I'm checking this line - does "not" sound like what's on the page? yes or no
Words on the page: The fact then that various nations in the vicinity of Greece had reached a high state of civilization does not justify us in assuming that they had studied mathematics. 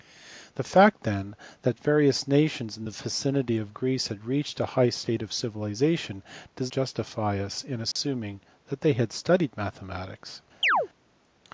no